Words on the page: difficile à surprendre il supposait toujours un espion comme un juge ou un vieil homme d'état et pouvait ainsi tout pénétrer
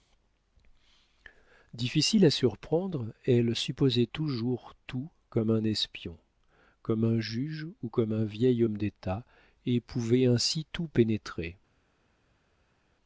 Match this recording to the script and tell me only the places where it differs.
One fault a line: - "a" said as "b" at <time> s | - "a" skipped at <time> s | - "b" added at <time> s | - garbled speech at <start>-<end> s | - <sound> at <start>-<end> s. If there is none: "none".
- "il" said as "elle" at 3.2 s
- "tout comme" added at 4.9 s
- "comme" added at 7.9 s